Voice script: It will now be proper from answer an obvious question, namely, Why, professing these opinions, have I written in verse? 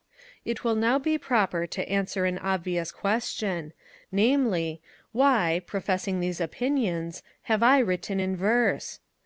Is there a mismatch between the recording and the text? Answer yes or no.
yes